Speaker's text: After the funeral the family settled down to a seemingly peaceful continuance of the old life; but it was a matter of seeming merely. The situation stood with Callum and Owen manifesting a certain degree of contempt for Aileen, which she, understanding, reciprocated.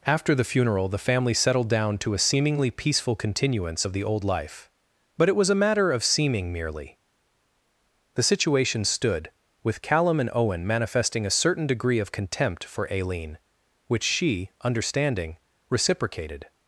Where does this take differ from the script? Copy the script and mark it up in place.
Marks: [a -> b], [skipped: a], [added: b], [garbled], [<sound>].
After the funeral the family settled down to a seemingly peaceful continuance of the old life; but it was a matter of seeming merely. The situation stood with Callum and Owen manifesting a certain degree of contempt for Aileen, which she, understanding, reciprocated.